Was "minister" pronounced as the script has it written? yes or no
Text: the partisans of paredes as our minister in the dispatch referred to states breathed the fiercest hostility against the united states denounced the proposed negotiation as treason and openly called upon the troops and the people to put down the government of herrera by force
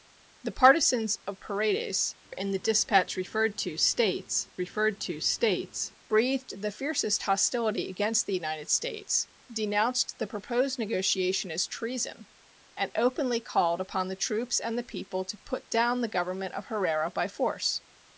no